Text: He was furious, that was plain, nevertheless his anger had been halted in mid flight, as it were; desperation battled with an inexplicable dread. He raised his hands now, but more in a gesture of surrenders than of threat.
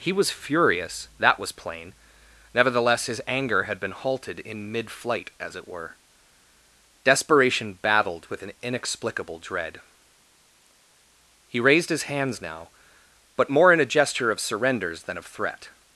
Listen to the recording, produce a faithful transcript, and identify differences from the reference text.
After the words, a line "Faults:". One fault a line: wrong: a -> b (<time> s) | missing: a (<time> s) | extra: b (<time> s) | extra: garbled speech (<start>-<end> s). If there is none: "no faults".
He was furious, that was plain, nevertheless his anger had been halted in mid flight, as it were; desperation battled with an inexplicable dread. He raised his hands now, but more in a gesture of surrenders than of threat.
Faults:
no faults